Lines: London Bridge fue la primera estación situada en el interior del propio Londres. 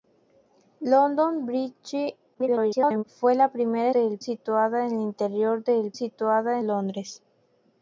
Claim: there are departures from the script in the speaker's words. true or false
true